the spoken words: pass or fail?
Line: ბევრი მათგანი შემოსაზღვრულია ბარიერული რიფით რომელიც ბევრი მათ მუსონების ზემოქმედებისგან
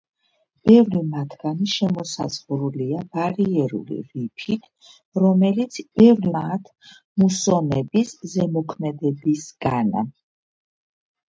pass